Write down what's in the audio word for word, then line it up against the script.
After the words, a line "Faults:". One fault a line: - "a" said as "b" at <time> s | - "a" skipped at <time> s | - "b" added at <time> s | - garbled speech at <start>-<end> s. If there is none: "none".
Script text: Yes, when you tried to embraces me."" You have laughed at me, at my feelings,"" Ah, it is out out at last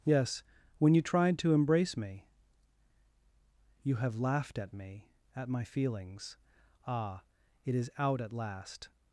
Yes, when you tried to embrace me."" You have laughed at me, at my feelings,"" Ah, it is out at last
Faults:
- "embraces" said as "embrace" at 1.5 s
- "out" skipped at 8.2 s